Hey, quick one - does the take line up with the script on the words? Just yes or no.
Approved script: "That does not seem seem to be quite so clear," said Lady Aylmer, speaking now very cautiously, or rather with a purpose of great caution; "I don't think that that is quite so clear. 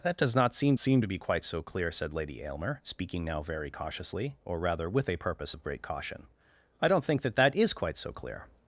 yes